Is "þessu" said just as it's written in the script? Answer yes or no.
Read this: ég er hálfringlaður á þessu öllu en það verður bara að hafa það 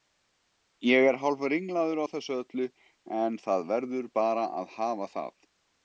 yes